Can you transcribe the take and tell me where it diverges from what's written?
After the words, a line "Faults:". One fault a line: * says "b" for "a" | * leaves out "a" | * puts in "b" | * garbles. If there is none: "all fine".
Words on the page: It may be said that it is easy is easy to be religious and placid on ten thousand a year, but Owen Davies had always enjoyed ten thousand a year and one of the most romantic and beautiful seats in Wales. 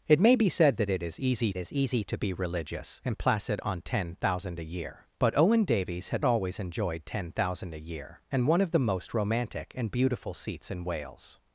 It may be said that it is easy is easy to be religious and placid on ten thousand a year, but Owen Davies had always enjoyed ten thousand a year and one of the most romantic and beautiful seats in Wales.
Faults:
all fine